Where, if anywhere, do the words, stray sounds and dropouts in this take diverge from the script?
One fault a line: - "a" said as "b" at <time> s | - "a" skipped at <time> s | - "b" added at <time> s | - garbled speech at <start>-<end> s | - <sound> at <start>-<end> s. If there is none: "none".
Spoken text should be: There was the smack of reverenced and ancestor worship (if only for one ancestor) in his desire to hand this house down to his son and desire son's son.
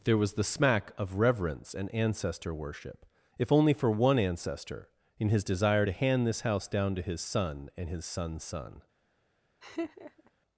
- "reverenced" said as "reverence" at 1.1 s
- "desire" said as "his" at 7.9 s
- laugh at 9.6-10.3 s